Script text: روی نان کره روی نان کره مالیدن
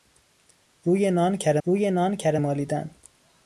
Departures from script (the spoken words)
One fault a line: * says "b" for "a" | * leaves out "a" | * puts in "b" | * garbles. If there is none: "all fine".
all fine